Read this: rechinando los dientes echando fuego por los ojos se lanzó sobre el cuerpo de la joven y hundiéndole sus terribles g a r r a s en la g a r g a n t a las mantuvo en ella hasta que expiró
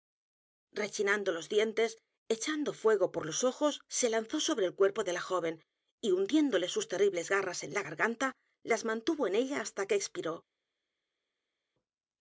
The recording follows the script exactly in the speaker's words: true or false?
true